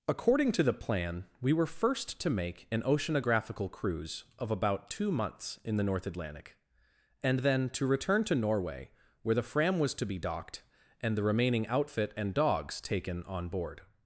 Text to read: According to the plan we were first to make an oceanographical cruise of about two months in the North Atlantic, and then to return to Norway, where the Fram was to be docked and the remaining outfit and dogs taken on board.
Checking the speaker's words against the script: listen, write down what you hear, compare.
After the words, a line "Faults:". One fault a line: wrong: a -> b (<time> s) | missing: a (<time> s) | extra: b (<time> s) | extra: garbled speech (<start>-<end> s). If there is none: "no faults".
According to the plan we were first to make an oceanographical cruise of about two months in the North Atlantic, and then to return to Norway, where the Fram was to be docked and the remaining outfit and dogs taken on board.
Faults:
no faults